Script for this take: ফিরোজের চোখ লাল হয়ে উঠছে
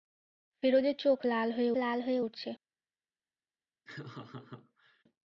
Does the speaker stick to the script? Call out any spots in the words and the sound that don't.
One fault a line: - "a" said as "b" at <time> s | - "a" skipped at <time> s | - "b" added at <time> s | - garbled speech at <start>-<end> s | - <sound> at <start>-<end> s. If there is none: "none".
- "লাল হয়ে" added at 1.8 s
- laugh at 3.8-5.0 s